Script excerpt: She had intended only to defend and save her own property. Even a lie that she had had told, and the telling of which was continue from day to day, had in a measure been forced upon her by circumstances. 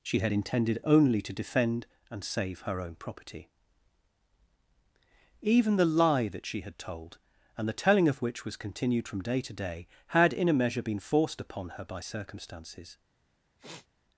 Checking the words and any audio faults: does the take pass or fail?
fail